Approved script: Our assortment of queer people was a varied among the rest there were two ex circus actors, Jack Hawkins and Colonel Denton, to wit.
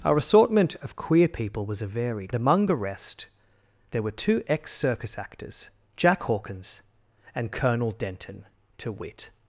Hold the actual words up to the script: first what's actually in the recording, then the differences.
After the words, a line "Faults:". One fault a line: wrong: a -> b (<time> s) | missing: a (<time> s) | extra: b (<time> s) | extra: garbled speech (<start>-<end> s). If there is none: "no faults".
Our assortment of queer people was a varied among the rest there were two ex circus actors, Jack Hawkins and Colonel Denton, to wit.
Faults:
no faults